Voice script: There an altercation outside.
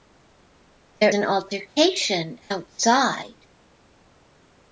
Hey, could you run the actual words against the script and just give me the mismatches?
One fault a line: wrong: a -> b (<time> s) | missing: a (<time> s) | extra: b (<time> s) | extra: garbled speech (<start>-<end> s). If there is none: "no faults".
no faults